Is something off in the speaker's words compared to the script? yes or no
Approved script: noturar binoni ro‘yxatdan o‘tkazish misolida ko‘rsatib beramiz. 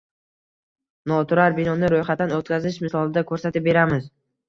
no